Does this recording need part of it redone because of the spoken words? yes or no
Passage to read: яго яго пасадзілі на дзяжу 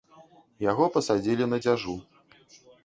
yes